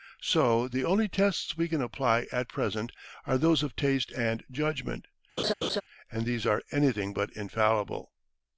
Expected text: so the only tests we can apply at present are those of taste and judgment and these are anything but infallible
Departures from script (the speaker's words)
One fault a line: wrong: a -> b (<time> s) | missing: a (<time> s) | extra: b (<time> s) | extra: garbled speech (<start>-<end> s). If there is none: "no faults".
no faults